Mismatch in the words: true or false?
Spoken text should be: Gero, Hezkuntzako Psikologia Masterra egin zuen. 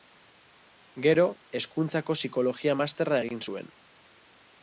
false